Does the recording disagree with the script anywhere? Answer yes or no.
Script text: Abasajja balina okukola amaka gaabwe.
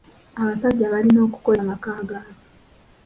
no